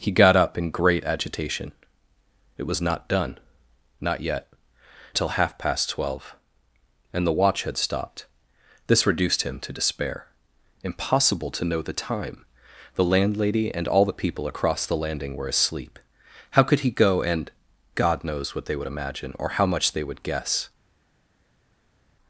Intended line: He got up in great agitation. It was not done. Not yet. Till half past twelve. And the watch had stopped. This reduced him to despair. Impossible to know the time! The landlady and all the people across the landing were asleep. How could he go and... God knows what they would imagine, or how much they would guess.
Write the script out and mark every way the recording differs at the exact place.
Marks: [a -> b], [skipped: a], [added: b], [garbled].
He got up in great agitation. It was not done. Not yet. Till half past twelve. And the watch had stopped. This reduced him to despair. Impossible to know the time! The landlady and all the people across the landing were asleep. How could he go and... God knows what they would imagine, or how much they would guess.